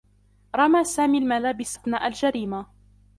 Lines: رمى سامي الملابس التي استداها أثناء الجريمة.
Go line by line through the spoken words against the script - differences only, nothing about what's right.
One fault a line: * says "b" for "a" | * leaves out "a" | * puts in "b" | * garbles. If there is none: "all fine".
* leaves out "التي استداها"